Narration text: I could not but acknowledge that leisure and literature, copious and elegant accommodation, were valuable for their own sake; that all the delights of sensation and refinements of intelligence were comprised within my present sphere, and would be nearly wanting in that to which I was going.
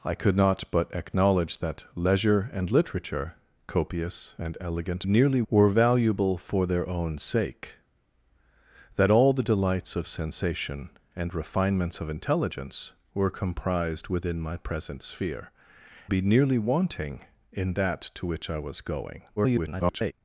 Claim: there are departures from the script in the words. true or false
true